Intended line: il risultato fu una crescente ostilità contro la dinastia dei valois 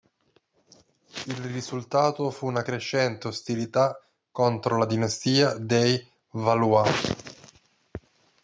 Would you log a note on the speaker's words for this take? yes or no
no